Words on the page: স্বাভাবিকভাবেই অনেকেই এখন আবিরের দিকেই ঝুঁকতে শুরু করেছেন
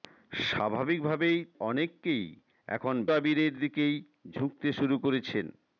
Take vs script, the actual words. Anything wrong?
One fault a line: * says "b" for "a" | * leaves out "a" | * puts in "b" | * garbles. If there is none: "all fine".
all fine